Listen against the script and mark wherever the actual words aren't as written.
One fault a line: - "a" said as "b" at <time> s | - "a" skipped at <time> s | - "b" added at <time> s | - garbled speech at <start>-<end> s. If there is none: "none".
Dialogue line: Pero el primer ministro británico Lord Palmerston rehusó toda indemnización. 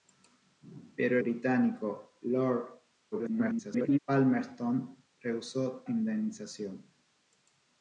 - "el primer ministro" skipped at 1.2 s
- garbled speech at 3.1-4.0 s
- "toda" skipped at 5.8 s